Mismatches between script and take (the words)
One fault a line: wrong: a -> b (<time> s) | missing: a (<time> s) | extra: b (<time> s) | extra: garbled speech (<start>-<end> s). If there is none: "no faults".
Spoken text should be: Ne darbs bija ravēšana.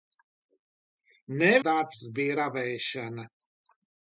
no faults